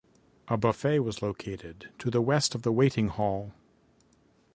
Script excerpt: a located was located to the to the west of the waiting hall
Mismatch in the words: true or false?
true